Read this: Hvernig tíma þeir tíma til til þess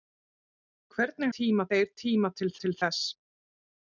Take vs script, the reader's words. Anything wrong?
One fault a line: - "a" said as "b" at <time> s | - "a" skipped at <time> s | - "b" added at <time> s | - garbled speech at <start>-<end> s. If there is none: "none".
none